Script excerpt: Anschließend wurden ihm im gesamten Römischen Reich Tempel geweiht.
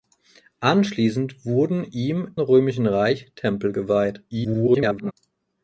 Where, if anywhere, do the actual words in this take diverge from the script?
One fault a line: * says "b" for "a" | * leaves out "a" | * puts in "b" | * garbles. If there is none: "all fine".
* leaves out "im gesamten"
* garbles